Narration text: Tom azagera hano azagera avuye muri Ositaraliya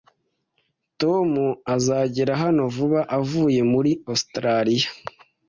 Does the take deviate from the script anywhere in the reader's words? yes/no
yes